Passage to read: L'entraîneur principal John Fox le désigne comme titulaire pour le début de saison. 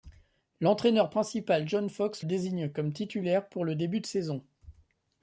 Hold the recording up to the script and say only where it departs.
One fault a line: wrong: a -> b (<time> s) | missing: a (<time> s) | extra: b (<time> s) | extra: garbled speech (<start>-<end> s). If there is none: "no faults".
missing: le (2.2 s)